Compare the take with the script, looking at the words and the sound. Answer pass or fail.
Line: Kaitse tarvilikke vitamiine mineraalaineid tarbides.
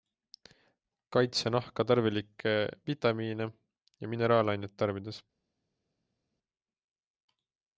fail